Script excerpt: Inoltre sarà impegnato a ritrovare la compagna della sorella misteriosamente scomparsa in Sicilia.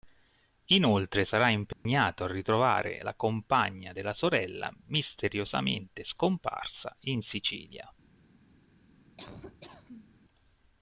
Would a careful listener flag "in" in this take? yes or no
no